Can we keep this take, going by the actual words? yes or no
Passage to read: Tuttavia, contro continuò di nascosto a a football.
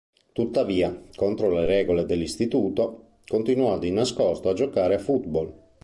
no